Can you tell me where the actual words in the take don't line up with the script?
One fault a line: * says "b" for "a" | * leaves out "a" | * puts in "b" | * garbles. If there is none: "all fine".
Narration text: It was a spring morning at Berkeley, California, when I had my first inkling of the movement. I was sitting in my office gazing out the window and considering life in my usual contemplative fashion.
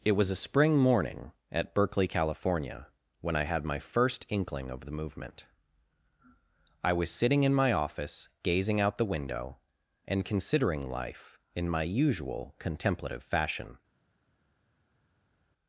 all fine